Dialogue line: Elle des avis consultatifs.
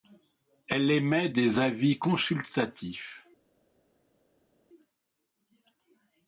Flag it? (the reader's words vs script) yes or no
yes